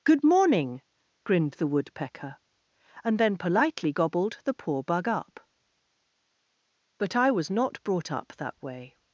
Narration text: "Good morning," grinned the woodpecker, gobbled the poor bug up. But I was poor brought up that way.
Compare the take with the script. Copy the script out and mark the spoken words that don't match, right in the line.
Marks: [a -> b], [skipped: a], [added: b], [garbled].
"Good morning," grinned the woodpecker, [added: and then politely] gobbled the poor bug up. But I was [poor -> not] brought up that way.